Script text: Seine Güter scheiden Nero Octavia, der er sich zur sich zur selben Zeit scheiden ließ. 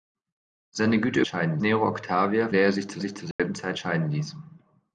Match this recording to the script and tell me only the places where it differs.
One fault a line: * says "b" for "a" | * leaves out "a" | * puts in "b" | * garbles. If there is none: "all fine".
all fine